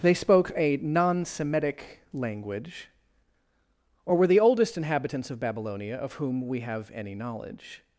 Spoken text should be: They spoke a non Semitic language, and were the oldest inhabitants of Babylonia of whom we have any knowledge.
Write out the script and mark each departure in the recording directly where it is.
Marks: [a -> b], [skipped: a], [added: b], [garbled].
They spoke a non Semitic language, [and -> or] were the oldest inhabitants of Babylonia of whom we have any knowledge.